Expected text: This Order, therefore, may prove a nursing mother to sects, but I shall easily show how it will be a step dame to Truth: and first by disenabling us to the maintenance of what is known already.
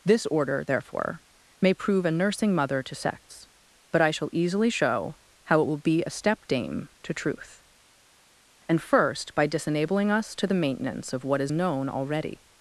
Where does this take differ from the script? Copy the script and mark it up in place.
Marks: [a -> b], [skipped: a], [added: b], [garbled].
This Order, therefore, may prove a nursing mother to sects, but I shall easily show how it will be a step dame to Truth: and first by disenabling us to the maintenance of what is known already.